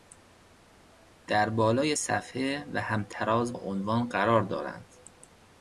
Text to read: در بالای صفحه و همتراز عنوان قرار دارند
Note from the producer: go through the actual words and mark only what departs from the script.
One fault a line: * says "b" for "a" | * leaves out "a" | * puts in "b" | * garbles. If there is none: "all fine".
all fine